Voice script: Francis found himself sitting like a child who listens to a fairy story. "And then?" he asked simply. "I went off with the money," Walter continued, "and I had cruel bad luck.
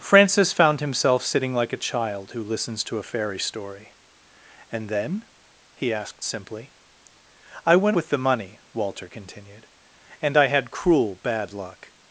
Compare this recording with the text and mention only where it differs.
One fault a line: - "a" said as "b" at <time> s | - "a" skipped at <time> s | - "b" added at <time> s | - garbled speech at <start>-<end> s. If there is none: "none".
- "off" skipped at 8.0 s